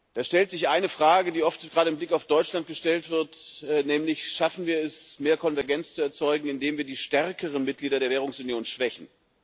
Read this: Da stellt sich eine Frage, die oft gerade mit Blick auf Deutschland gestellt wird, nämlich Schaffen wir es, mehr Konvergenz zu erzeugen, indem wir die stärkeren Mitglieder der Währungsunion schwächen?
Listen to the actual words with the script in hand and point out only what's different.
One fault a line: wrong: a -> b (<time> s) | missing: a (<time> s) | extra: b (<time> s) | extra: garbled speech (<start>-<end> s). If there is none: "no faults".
no faults